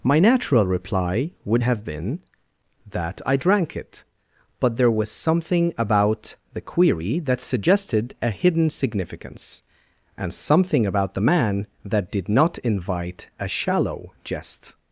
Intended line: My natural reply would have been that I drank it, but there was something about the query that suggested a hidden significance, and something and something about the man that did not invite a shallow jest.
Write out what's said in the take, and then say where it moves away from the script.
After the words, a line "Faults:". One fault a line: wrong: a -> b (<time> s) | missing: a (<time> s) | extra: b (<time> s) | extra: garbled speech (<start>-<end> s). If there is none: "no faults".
My natural reply would have been that I drank it, but there was something about the query that suggested a hidden significance, and something about the man that did not invite a shallow jest.
Faults:
missing: and something (10.9 s)